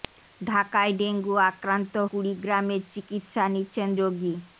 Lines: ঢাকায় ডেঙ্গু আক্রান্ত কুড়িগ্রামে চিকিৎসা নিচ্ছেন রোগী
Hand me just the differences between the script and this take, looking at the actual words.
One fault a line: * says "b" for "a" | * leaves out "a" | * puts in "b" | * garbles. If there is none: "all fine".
all fine